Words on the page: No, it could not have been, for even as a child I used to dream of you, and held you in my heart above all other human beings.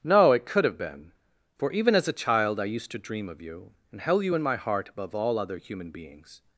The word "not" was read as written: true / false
false